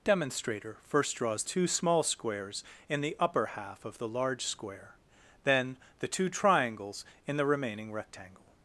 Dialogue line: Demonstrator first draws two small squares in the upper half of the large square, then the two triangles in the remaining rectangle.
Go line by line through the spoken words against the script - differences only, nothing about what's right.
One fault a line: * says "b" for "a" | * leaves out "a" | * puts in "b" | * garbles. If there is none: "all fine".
all fine